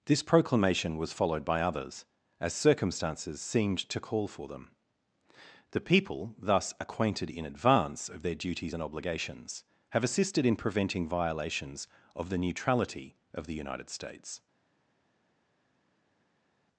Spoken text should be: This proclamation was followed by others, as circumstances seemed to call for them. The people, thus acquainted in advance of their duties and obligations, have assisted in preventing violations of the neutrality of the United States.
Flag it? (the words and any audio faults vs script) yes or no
no